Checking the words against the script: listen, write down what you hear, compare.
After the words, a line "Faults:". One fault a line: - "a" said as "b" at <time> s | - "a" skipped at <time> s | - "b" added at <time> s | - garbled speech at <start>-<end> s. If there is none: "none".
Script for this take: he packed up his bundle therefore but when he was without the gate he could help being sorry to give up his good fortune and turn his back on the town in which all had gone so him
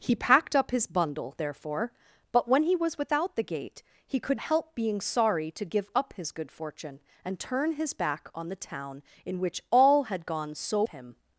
he packed up his bundle therefore but when he was without the gate he could help being sorry to give up his good fortune and turn his back on the town in which all had gone so him
Faults:
none